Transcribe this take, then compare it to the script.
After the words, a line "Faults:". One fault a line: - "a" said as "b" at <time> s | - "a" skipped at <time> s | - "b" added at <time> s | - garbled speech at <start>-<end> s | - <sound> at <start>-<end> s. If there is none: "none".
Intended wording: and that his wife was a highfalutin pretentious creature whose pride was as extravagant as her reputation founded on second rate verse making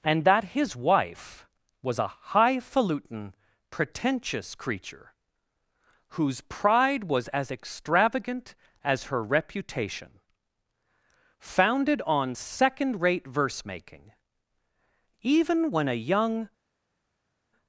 and that his wife was a highfalutin pretentious creature whose pride was as extravagant as her reputation founded on second rate verse making even when a young
Faults:
- "even when a young" added at 15.3 s